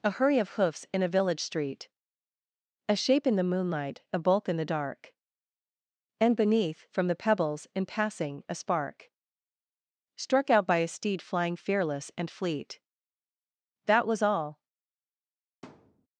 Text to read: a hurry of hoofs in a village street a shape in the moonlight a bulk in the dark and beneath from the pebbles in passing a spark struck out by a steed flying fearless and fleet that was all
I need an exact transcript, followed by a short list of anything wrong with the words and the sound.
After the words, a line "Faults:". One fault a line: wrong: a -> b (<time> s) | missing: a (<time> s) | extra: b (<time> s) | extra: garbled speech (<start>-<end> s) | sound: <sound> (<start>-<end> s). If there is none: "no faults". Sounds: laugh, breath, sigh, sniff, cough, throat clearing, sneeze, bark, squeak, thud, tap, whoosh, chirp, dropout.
a hurry of hoofs in a village street a shape in the moonlight a bulk in the dark and beneath from the pebbles in passing a spark struck out by a steed flying fearless and fleet that was all
Faults:
sound: thud (15.6-16.1 s)